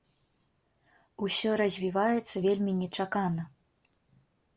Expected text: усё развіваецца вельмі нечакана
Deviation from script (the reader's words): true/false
false